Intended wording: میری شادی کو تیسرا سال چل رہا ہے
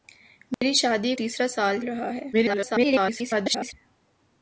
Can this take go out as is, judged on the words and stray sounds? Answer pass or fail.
fail